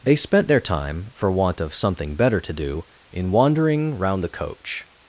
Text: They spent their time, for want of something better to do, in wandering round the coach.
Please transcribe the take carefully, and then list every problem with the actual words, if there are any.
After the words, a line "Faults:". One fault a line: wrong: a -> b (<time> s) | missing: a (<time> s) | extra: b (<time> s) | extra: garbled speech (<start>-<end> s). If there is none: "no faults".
They spent their time, for want of something better to do, in wandering round the coach.
Faults:
no faults